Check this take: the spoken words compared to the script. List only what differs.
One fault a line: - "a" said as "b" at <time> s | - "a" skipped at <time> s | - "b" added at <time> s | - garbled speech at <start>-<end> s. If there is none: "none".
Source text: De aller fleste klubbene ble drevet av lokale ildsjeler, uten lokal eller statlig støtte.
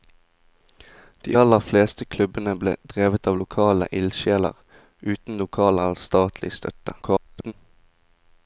- garbled speech at 7.0-7.5 s